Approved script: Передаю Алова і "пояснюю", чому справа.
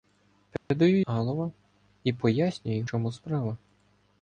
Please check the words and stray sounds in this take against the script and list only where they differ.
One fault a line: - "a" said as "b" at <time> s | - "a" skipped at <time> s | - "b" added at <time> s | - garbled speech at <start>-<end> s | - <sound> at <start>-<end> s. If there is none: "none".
- dropout at 0.6-0.7 s